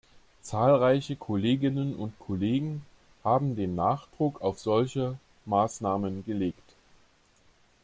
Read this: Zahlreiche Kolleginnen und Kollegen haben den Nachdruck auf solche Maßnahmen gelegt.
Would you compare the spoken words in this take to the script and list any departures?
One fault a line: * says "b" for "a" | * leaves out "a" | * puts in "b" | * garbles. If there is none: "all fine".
all fine